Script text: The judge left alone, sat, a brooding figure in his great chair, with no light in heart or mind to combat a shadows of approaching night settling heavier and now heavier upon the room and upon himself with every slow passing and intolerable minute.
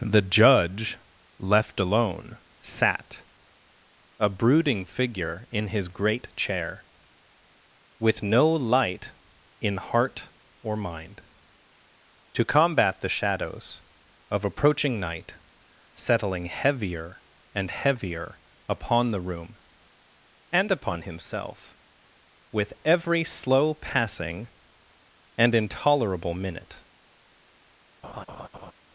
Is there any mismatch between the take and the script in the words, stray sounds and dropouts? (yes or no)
yes